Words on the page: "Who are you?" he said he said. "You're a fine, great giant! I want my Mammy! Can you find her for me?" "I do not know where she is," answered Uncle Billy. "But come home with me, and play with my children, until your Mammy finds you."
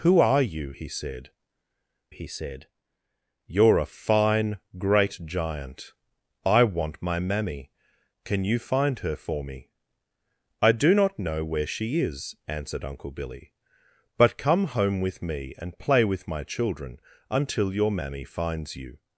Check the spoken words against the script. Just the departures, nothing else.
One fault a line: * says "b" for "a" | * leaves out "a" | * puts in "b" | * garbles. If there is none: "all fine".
all fine